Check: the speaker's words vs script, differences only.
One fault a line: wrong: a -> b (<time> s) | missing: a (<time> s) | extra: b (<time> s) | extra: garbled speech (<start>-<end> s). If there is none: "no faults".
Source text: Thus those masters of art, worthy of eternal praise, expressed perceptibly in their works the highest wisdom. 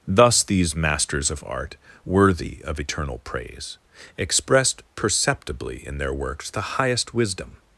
wrong: those -> these (0.4 s)